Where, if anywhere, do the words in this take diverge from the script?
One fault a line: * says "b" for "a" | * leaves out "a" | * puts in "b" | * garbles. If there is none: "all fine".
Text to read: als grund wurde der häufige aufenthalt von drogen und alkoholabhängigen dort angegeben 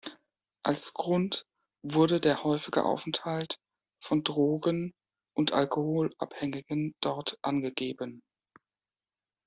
all fine